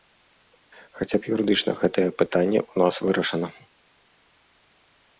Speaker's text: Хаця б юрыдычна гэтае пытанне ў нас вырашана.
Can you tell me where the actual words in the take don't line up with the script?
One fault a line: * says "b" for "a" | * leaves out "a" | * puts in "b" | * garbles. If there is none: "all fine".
all fine